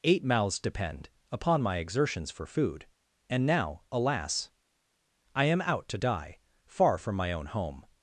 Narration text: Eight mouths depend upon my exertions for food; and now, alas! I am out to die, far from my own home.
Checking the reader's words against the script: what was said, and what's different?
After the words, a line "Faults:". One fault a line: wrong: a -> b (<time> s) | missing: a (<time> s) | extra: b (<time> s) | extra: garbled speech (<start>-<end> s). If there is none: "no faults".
Eight mouths depend upon my exertions for food; and now, alas! I am out to die, far from my own home.
Faults:
no faults